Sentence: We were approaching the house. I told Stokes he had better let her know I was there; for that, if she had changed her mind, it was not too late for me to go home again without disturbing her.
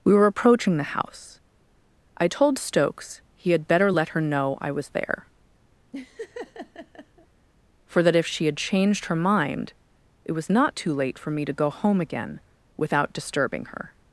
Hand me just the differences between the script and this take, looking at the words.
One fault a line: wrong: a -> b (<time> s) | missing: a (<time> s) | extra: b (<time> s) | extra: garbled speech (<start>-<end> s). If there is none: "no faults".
no faults